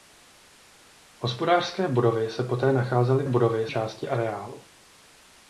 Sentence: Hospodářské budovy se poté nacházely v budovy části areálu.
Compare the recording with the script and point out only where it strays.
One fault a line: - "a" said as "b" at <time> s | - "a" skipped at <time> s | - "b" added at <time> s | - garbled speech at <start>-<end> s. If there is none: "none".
none